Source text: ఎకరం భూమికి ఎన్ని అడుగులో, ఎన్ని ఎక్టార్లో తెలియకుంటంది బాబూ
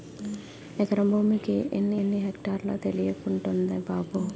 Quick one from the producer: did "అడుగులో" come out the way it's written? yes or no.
no